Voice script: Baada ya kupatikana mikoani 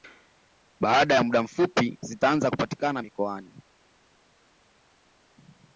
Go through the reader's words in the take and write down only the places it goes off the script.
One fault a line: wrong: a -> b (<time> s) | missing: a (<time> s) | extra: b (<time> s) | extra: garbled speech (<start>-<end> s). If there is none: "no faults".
extra: muda mfupi zitaanza (1.2 s)